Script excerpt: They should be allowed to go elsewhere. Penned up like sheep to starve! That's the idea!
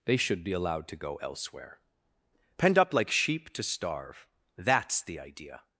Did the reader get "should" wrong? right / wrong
right